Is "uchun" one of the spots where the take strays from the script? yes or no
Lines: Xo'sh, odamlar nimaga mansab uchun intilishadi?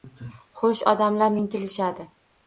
yes